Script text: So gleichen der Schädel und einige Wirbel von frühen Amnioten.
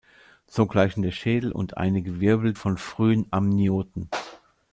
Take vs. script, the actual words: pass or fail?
pass